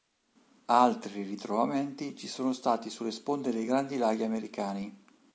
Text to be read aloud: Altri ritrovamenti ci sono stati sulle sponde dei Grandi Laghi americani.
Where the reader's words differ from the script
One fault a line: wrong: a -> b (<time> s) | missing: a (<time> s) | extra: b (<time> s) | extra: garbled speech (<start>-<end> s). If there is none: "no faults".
no faults